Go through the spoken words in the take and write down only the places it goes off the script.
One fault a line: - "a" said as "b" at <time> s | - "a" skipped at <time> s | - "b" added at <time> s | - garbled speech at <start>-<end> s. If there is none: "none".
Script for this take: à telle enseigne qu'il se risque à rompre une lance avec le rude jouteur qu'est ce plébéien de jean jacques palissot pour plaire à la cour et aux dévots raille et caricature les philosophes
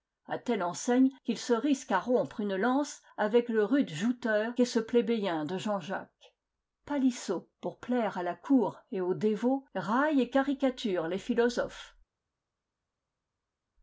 none